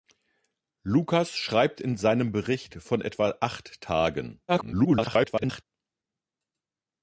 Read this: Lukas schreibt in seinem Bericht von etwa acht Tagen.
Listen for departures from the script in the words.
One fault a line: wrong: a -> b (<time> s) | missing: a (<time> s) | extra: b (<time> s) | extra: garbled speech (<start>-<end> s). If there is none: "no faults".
extra: garbled speech (4.5-5.6 s)